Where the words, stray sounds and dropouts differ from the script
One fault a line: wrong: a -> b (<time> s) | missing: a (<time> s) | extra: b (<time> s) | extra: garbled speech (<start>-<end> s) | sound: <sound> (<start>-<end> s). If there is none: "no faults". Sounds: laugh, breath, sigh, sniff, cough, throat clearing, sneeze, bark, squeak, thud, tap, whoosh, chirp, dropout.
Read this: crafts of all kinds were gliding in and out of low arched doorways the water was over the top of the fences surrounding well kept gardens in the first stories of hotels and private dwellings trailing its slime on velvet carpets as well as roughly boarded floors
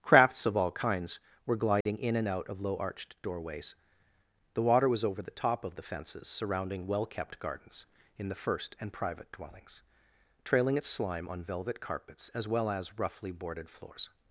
sound: dropout (1.8-1.9 s)
missing: stories of hotels (8.8 s)